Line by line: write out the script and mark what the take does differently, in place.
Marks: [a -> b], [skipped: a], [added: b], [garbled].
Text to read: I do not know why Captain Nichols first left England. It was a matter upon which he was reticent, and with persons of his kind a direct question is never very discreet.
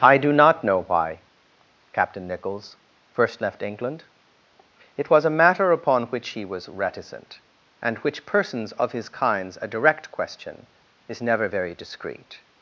I do not know why Captain Nichols first left England. It was a matter upon which he was reticent, and [with -> which] persons of his [kind -> kinds] a direct question is never very discreet.